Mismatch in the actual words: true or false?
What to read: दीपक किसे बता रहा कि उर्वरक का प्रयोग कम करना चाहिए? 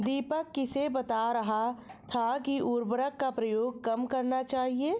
true